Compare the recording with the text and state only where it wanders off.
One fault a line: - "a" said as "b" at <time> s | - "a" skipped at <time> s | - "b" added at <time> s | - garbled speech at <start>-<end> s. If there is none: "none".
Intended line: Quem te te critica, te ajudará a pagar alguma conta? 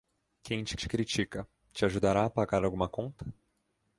none